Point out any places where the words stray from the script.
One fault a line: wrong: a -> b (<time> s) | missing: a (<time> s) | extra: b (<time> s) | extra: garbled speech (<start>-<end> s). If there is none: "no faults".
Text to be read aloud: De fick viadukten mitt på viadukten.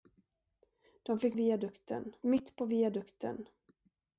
no faults